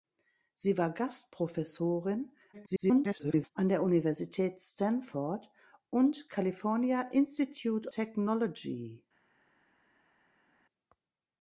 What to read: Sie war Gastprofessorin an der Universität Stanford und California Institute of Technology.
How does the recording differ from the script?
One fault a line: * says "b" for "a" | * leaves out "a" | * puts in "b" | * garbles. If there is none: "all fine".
* garbles
* leaves out "of"